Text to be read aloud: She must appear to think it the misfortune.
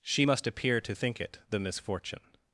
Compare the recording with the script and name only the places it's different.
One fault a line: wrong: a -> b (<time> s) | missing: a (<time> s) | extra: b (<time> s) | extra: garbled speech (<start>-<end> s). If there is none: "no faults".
no faults